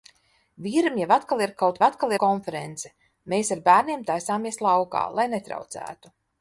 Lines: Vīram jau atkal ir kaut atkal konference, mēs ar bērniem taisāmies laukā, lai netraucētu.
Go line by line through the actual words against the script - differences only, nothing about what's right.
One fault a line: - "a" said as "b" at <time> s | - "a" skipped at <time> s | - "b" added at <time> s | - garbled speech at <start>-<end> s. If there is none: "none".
none